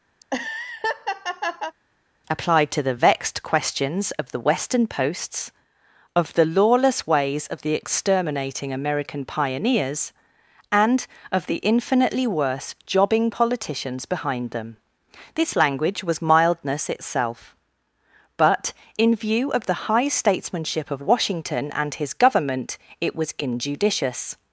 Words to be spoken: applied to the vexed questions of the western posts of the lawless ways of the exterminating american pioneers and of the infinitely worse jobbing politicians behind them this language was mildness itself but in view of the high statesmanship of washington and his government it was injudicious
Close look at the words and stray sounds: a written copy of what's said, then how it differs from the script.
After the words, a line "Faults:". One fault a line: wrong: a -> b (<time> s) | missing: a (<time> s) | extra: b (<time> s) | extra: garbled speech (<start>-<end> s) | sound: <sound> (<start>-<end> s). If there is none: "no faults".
applied to the vexed questions of the western posts of the lawless ways of the exterminating american pioneers and of the infinitely worse jobbing politicians behind them this language was mildness itself but in view of the high statesmanship of washington and his government it was injudicious
Faults:
sound: laugh (0.2-1.7 s)